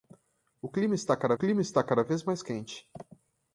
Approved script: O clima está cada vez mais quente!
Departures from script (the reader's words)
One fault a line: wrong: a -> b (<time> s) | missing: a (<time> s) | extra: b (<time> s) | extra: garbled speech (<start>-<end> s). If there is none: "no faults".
extra: clima está cada (1.3 s)